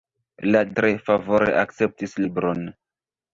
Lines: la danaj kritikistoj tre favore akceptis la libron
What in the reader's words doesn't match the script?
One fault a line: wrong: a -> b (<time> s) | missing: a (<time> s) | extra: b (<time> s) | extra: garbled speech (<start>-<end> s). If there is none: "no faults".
missing: danaj kritikistoj (0.6 s)
missing: la (2.2 s)